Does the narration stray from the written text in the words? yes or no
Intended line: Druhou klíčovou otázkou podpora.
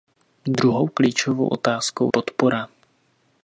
no